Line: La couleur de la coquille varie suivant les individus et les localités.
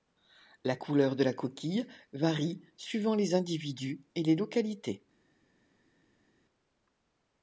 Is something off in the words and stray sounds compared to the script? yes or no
no